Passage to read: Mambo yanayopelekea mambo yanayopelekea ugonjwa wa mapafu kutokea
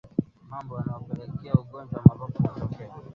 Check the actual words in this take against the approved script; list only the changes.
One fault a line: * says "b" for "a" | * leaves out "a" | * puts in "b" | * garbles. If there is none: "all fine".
* leaves out "mambo yanayopelekea"